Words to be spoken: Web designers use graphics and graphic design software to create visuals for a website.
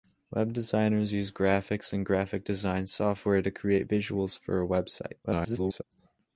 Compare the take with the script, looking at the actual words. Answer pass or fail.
fail